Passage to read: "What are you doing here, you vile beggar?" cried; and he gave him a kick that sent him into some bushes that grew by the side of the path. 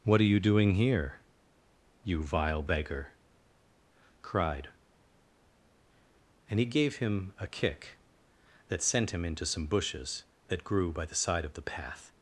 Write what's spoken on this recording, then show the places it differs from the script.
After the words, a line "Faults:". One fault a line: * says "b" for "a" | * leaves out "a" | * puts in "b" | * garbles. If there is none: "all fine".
"What are you doing here, you vile beggar?" cried; and he gave him a kick that sent him into some bushes that grew by the side of the path.
Faults:
all fine